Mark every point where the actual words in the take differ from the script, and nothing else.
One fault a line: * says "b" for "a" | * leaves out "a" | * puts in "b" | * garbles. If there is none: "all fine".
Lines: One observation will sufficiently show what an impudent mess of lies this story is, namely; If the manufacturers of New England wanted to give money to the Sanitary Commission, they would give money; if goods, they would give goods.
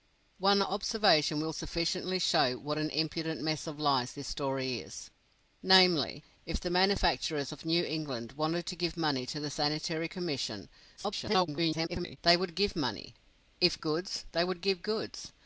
* garbles